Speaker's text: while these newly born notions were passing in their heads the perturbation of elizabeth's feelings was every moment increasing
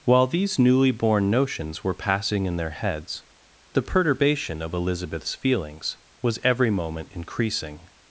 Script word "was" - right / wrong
right